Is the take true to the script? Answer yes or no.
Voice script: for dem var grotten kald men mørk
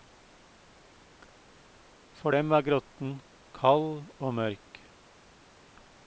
no